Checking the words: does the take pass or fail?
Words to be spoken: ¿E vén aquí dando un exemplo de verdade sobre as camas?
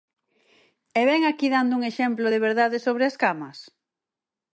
pass